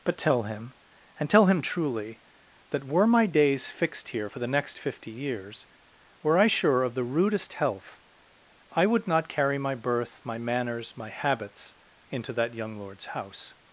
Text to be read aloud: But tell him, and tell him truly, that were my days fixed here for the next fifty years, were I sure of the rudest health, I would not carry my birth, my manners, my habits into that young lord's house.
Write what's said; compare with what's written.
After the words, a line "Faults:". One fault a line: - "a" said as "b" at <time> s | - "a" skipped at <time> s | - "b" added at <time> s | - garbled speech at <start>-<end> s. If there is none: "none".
But tell him, and tell him truly, that were my days fixed here for the next fifty years, were I sure of the rudest health, I would not carry my birth, my manners, my habits into that young lord's house.
Faults:
none